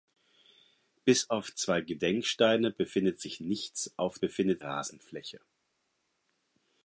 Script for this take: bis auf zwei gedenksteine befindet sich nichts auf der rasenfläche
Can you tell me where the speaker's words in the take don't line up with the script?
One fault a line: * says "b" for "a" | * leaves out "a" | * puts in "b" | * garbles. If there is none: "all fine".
* says "befindet" for "der"